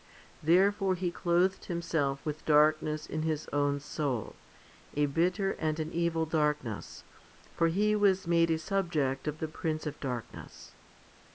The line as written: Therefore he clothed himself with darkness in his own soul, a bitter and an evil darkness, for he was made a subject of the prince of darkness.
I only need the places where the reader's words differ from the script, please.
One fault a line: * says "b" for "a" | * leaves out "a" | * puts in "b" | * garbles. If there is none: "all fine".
all fine